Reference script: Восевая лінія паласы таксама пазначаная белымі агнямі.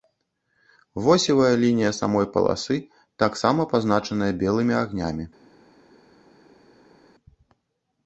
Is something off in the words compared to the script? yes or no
yes